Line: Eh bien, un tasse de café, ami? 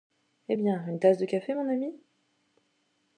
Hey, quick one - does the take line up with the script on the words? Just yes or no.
no